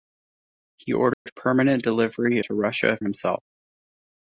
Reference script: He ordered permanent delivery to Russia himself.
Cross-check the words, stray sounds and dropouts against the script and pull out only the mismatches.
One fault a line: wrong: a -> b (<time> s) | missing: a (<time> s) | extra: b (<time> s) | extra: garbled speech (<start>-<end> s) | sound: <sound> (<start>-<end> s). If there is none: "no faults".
sound: dropout (1.1-1.3 s)